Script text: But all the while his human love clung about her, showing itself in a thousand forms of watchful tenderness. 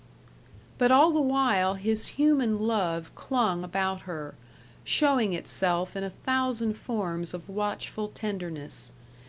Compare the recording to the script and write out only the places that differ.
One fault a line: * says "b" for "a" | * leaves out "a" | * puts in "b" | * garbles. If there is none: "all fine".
all fine